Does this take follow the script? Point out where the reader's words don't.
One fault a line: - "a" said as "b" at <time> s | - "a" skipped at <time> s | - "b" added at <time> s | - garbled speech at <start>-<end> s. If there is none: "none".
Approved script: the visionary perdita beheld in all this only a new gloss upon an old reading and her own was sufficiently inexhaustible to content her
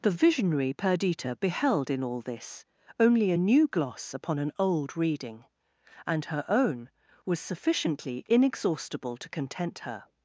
none